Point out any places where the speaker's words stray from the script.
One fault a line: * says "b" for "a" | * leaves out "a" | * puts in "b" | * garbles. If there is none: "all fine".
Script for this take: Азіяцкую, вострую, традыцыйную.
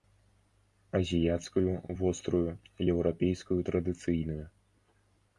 * puts in "еўрапейскую"